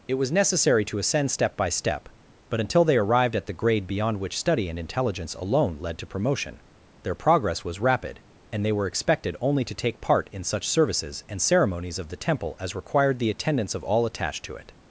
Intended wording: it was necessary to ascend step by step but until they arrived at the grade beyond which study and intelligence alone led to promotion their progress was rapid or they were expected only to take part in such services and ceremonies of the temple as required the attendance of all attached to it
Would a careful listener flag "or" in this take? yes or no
yes